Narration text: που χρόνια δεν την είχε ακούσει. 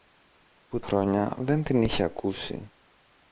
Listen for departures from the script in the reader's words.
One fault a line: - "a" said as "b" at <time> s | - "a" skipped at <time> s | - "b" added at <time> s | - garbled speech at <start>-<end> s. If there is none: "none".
none